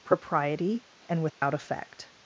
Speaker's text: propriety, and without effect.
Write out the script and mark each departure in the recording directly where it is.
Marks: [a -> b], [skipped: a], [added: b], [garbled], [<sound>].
propriety, and without [dropout] effect.